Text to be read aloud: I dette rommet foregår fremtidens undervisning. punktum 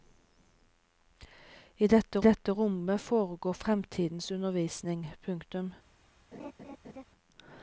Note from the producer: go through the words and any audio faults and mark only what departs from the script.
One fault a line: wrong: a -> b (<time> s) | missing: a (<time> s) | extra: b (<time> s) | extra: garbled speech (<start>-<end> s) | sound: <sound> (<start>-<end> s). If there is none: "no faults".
extra: dette (2.2 s)
sound: laugh (6.3-7.0 s)